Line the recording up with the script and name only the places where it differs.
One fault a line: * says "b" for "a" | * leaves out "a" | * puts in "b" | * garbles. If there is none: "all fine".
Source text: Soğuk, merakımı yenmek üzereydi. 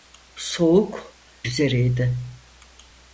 * leaves out "merakımı yenmek"